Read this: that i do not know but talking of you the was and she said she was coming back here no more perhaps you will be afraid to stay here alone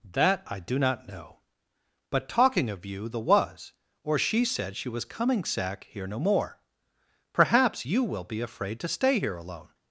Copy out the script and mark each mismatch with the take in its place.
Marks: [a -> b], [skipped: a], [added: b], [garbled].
that i do not know but talking of you the was [and -> or] she said she was coming [back -> sack] here no more perhaps you will be afraid to stay here alone